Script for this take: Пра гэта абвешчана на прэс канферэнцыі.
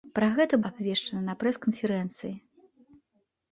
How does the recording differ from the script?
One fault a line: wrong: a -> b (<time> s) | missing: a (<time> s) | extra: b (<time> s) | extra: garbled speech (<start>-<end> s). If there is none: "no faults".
no faults